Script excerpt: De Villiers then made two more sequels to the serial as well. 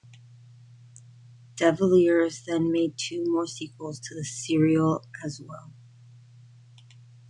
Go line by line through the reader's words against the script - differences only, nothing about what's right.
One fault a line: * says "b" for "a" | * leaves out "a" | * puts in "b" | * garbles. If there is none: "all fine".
all fine